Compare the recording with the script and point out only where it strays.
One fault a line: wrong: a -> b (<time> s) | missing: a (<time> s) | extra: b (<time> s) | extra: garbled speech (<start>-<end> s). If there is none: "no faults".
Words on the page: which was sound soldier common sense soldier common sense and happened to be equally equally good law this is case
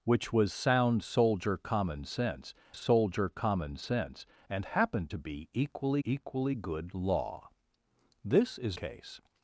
no faults